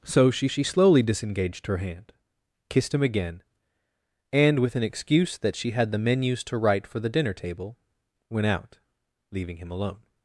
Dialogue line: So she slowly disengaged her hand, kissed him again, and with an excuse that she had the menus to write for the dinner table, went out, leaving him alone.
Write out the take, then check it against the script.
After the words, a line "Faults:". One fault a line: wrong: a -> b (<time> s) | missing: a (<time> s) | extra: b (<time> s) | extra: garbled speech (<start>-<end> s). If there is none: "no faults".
So she she slowly disengaged her hand, kissed him again, and with an excuse that she had the menus to write for the dinner table, went out, leaving him alone.
Faults:
extra: she (0.5 s)